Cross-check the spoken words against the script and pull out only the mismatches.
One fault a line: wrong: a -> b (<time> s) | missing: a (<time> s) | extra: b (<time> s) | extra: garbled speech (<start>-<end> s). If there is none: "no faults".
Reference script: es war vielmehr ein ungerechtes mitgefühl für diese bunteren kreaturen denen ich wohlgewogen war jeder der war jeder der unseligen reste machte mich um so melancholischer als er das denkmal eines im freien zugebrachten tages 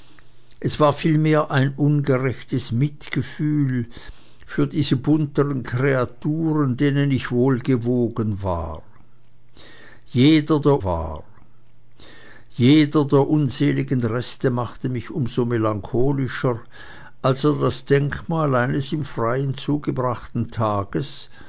no faults